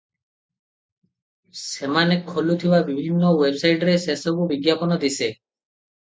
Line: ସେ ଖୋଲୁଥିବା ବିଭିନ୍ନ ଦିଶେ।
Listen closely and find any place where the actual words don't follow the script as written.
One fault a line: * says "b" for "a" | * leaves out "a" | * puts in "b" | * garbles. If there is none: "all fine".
* says "ସେମାନେ" for "ସେ"
* puts in "ୱେବସାଇଟରେ ସେସବୁ ବିଜ୍ଞାପନ"